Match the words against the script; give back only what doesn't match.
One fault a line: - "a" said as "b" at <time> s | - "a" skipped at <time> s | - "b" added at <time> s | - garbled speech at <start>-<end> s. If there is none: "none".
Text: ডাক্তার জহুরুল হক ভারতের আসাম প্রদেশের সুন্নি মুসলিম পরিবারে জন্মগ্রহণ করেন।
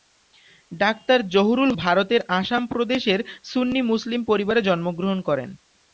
- "হক" skipped at 1.7 s